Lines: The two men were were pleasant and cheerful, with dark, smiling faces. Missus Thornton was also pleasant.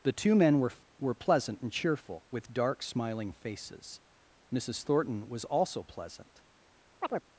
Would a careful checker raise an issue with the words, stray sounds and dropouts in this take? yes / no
yes